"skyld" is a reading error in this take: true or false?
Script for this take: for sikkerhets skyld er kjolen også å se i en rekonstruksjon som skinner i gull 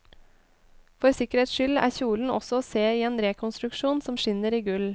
false